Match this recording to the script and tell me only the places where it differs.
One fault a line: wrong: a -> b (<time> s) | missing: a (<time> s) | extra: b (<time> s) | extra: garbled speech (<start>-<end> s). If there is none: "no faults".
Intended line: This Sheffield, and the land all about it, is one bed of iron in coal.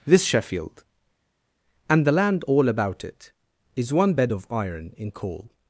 no faults